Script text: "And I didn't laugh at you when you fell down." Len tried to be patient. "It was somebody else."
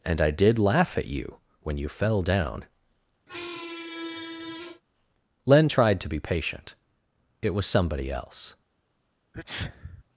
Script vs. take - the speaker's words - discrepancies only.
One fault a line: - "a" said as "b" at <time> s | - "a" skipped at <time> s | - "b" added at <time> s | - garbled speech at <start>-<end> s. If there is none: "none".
- "didn't" said as "did" at 0.3 s